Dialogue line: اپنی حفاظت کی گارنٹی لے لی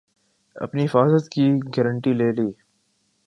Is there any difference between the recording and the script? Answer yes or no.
no